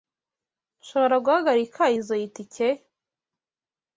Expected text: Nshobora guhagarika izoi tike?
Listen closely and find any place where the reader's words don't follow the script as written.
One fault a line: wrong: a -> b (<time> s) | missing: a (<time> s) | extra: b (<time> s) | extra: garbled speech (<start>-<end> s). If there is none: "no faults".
no faults